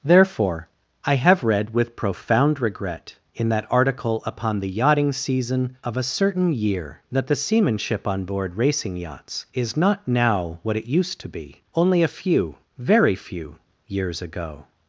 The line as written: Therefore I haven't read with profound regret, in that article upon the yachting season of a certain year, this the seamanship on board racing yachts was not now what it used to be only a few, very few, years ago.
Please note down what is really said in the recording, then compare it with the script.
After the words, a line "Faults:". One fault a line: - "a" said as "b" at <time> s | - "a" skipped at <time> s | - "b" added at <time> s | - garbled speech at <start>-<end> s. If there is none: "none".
Therefore I have read with profound regret, in that article upon the yachting season of a certain year, that the seamanship on board racing yachts is not now what it used to be only a few, very few, years ago.
Faults:
- "haven't" said as "have" at 1.1 s
- "this" said as "that" at 7.1 s
- "was" said as "is" at 9.5 s